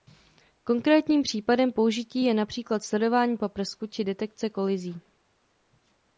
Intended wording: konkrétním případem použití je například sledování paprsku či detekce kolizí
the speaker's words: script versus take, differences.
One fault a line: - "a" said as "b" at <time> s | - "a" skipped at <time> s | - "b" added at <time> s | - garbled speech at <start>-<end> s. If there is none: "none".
none